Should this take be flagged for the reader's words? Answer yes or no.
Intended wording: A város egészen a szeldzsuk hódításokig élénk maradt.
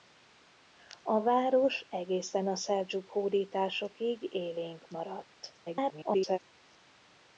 yes